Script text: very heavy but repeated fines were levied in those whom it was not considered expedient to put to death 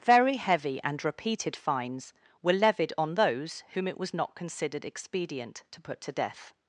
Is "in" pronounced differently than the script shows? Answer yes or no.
yes